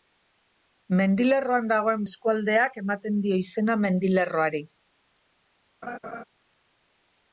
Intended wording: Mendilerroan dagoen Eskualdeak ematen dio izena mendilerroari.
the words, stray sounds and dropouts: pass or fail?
fail